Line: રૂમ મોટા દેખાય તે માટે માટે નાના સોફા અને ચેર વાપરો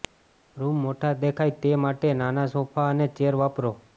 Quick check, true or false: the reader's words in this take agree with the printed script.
false